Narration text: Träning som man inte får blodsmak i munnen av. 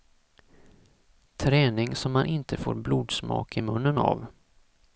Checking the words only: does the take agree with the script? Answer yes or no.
yes